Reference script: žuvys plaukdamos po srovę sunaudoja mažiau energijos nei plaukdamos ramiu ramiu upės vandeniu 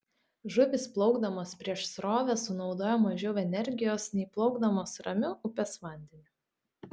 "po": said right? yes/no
no